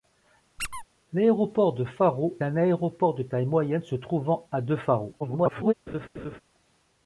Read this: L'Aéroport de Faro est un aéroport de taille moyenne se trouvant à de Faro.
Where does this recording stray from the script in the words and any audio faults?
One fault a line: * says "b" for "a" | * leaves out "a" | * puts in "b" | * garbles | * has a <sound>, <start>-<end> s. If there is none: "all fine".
* has a squeak, 0.6-0.8 s
* leaves out "est"
* garbles
* has a laugh, 5.9-6.4 s